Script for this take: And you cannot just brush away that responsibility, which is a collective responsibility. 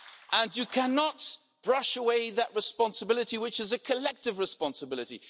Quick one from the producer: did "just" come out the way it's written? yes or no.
no